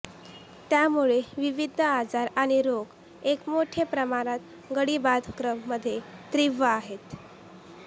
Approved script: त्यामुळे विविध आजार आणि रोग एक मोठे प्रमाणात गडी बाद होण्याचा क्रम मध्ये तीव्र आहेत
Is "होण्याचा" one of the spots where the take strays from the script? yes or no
yes